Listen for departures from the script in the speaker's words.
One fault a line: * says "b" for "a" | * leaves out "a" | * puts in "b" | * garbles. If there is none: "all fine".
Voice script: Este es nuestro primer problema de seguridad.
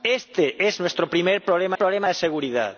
* puts in "problema"